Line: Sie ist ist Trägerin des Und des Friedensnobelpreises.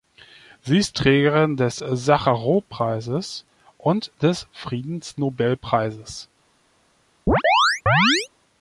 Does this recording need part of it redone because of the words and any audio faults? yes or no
yes